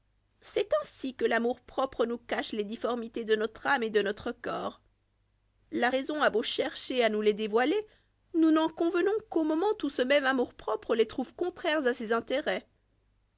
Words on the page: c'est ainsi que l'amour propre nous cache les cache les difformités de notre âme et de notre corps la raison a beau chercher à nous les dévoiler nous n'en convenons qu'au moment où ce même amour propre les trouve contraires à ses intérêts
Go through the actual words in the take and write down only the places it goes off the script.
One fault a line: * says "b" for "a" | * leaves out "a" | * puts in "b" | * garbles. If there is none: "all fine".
* leaves out "cache les"